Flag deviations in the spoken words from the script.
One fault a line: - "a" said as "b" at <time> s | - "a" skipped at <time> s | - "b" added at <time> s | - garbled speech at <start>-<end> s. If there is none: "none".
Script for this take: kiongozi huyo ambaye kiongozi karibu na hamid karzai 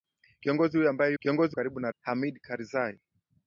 none